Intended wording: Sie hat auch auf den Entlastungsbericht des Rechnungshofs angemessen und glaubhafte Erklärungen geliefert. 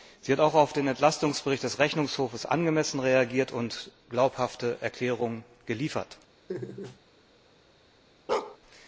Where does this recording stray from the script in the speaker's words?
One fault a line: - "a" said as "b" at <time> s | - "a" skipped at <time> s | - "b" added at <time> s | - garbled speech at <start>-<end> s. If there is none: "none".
- "reagiert" added at 3.0 s